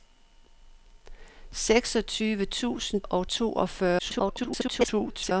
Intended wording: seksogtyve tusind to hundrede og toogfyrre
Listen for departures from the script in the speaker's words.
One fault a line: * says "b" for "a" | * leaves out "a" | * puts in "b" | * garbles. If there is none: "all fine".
* leaves out "to hundrede"
* garbles